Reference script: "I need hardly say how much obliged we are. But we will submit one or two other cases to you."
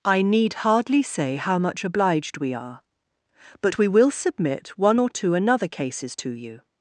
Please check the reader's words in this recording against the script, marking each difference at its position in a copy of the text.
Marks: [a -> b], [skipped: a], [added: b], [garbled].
"I need hardly say how much obliged we are. But we will submit one or two [other -> another] cases to you."